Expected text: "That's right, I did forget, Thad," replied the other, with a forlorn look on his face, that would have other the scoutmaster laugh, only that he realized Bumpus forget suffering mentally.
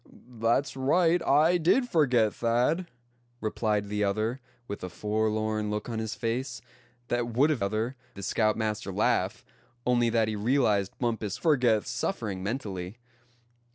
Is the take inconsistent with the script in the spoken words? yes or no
no